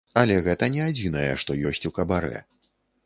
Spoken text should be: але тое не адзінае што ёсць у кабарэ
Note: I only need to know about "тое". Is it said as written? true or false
false